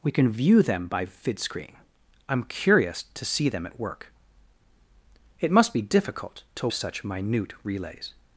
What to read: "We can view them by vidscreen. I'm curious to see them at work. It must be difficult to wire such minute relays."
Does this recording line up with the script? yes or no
no